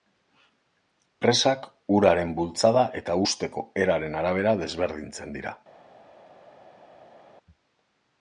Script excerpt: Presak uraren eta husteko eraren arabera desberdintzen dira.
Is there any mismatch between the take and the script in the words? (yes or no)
yes